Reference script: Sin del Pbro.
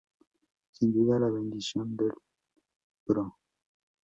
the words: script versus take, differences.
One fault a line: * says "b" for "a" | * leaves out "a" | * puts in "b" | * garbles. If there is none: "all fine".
* puts in "duda la bendición"